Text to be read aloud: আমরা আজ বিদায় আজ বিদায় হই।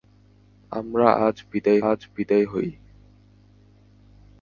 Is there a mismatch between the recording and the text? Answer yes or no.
no